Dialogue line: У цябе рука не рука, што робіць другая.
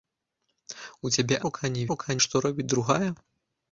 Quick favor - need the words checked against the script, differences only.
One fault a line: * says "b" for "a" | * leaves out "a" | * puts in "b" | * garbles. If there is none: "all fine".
all fine